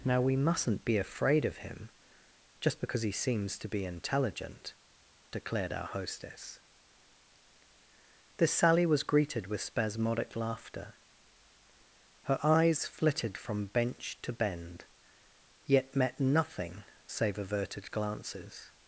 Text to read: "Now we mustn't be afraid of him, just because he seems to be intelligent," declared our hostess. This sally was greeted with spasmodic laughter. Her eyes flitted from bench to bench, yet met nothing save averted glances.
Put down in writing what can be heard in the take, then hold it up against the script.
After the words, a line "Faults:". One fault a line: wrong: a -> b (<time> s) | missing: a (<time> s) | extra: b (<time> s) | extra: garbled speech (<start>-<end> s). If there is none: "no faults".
"Now we mustn't be afraid of him, just because he seems to be intelligent," declared our hostess. This sally was greeted with spasmodic laughter. Her eyes flitted from bench to bend, yet met nothing save averted glances.
Faults:
wrong: bench -> bend (14.3 s)